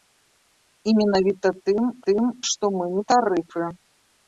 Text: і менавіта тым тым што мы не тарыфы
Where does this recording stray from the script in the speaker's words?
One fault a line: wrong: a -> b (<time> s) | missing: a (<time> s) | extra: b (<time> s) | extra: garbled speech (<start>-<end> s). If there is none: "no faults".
no faults